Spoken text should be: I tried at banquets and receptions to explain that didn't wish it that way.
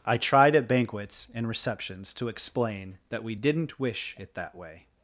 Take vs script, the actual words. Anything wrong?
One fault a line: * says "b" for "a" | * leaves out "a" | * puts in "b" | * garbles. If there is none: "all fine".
* puts in "we"